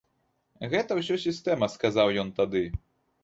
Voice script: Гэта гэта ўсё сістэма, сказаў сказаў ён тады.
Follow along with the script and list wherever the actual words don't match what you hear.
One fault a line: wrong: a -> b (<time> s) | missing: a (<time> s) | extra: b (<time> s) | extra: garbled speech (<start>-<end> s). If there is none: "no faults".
missing: гэта (0.9 s)
missing: сказаў (2.1 s)